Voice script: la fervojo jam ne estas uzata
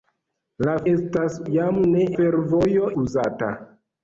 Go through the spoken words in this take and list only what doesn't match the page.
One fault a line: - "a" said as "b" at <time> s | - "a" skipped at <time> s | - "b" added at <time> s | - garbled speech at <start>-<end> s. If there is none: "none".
- "fervojo" said as "estas" at 0.9 s
- "estas" said as "fervojo" at 2.2 s